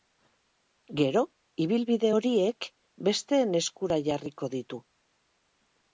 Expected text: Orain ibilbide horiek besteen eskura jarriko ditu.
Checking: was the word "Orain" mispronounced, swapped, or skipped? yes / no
yes